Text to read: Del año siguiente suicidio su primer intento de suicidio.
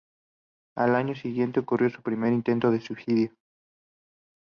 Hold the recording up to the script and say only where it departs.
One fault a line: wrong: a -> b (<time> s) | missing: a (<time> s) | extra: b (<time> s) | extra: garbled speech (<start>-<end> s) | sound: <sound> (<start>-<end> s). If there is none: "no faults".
wrong: Del -> Al (0.8 s)
wrong: suicidio -> ocurrió (1.6 s)